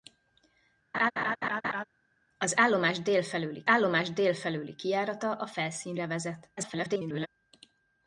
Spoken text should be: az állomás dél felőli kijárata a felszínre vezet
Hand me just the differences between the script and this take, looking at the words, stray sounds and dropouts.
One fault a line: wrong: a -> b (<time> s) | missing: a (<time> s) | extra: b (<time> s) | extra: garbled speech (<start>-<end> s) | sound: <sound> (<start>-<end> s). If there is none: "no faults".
sound: laugh (0.9-1.8 s)
extra: állomás dél felőli (3.7 s)
extra: garbled speech (6.6-7.3 s)